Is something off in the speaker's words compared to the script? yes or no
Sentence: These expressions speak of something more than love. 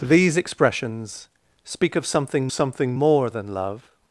yes